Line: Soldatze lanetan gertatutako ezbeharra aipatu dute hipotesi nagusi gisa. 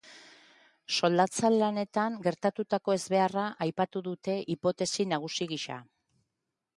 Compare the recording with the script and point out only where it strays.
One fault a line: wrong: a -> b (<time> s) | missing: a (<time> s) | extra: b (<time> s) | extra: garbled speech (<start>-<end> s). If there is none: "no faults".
no faults